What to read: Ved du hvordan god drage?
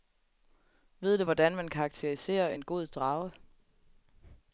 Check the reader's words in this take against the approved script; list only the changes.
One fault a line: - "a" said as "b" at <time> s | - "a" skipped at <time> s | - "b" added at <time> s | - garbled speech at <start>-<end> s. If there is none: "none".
- "man karakteriserer en" added at 1.6 s